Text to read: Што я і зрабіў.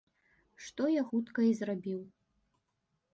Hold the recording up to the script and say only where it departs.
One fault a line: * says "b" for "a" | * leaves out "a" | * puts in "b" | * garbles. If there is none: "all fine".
* puts in "хутка"